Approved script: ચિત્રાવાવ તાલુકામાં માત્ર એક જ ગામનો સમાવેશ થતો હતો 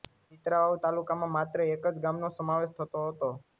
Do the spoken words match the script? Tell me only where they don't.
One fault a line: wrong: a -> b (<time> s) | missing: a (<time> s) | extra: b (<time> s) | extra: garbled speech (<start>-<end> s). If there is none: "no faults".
no faults